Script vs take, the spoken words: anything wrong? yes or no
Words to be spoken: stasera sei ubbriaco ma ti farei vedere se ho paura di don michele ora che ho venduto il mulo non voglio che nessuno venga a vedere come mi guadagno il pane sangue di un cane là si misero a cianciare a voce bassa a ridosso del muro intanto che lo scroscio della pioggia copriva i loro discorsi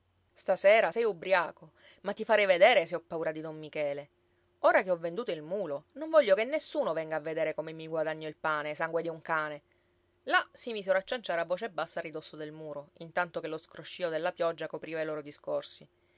no